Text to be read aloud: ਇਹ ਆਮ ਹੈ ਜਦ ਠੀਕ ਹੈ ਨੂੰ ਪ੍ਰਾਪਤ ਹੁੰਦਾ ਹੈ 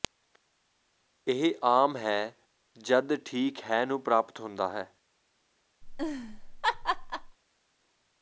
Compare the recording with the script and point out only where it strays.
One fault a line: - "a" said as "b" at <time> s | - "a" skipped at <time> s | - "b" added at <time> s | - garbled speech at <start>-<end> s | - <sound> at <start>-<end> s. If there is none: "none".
- laugh at 5.8-7.4 s